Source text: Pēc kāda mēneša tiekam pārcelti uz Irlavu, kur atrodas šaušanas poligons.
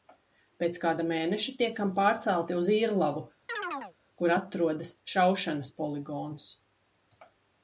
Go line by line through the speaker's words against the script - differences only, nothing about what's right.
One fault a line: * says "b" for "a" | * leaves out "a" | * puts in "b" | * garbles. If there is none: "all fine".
all fine